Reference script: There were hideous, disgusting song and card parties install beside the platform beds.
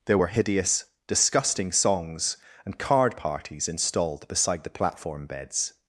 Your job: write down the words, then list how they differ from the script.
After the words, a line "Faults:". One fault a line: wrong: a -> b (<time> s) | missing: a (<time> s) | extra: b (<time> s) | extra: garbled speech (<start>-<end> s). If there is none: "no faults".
There were hideous, disgusting songs and card parties installed beside the platform beds.
Faults:
wrong: song -> songs (1.7 s)
wrong: install -> installed (3.7 s)